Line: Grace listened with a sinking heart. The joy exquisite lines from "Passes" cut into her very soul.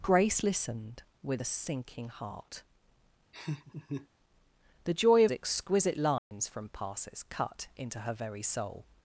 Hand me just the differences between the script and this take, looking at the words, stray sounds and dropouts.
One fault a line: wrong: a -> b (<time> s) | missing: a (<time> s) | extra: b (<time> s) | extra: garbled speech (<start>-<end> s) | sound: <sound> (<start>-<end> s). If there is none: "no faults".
sound: laugh (3.3-4.1 s)
sound: dropout (6.2-6.3 s)